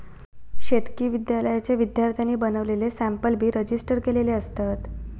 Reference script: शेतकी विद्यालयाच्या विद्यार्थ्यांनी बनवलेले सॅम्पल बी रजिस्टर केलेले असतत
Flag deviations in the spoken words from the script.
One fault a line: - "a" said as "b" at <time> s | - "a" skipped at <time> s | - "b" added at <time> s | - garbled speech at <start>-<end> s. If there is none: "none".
none